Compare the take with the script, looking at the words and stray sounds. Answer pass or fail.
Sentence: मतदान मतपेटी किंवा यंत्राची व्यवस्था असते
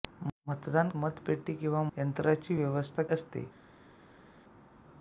pass